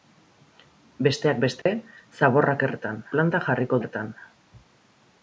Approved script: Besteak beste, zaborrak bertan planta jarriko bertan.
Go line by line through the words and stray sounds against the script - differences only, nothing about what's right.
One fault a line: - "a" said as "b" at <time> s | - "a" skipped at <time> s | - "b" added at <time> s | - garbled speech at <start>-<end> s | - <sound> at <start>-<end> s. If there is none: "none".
- dropout at 1.6-1.7 s